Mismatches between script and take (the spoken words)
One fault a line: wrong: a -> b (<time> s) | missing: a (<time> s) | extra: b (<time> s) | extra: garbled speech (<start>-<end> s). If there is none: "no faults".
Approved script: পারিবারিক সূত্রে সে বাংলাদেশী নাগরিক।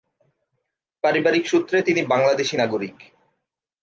wrong: সে -> তিনি (1.8 s)